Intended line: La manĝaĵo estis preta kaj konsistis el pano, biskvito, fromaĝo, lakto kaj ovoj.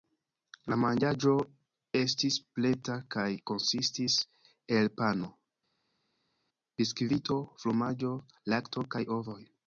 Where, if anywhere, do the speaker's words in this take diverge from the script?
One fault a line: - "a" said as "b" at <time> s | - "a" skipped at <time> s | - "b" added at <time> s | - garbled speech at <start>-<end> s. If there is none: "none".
none